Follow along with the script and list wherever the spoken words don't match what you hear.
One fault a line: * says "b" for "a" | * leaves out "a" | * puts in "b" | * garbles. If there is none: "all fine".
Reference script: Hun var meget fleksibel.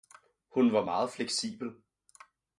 all fine